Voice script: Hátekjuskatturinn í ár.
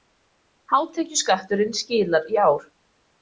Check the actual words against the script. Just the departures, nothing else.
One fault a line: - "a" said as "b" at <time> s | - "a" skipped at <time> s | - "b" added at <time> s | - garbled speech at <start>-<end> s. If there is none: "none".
- "skilar" added at 1.8 s